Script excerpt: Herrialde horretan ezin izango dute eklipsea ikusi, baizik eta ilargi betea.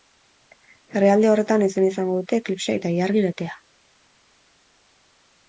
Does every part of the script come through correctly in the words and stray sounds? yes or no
no